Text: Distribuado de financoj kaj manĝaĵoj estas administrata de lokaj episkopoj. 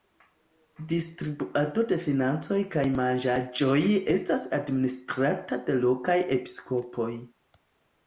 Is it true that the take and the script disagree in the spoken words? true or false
false